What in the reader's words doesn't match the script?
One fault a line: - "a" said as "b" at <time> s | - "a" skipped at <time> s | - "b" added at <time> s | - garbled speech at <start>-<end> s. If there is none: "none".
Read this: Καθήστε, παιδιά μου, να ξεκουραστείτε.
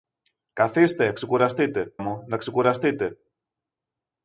- "παιδιά" said as "ξεκουραστείτε" at 1.1 s